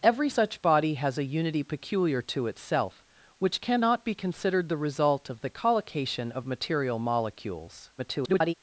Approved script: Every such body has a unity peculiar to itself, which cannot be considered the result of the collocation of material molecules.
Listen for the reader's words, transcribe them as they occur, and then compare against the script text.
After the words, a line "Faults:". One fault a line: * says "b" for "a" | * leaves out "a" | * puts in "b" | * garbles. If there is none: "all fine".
Every such body has a unity peculiar to itself, which cannot be considered the result of the collocation of material molecules. [garbled]
Faults:
* garbles